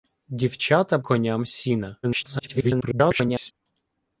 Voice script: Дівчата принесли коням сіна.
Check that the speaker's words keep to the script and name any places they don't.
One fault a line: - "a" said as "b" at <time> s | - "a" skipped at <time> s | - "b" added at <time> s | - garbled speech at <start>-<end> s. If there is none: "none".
- "принесли" skipped at 1.0 s
- garbled speech at 2.0-3.5 s